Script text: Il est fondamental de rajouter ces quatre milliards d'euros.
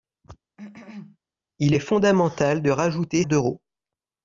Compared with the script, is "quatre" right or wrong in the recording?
wrong